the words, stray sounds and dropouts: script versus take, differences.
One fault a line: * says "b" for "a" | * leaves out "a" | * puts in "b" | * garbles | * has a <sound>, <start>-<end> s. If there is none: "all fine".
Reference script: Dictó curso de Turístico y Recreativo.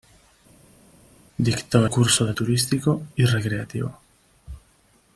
all fine